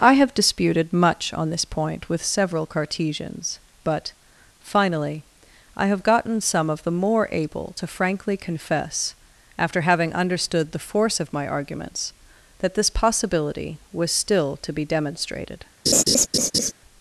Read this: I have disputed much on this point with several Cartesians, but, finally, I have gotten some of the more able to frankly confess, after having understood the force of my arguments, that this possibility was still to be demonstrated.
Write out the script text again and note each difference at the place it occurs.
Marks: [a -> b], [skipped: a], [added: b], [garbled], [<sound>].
I have disputed much on this point with several Cartesians, but, finally, I have gotten some of the more able to frankly confess, after having understood the force of my arguments, that this possibility was still to be demonstrated. [laugh]